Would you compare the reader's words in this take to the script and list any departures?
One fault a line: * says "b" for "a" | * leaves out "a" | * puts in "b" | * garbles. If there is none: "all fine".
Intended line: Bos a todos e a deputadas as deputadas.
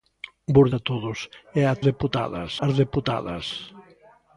all fine